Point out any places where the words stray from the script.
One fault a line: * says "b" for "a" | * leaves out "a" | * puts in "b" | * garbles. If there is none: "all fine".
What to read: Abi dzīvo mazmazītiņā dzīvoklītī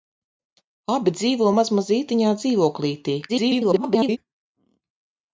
* garbles